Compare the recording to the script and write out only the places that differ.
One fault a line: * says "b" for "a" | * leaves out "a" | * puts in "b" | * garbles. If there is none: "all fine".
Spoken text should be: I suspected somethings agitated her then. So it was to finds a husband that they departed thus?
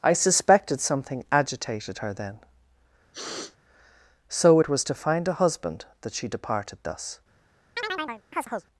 * says "something" for "somethings"
* says "find" for "finds"
* says "she" for "they"